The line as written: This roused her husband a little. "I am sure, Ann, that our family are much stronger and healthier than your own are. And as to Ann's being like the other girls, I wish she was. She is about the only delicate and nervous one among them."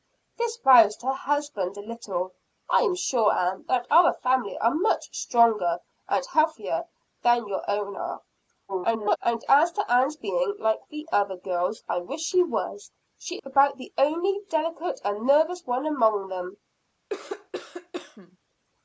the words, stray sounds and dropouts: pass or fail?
fail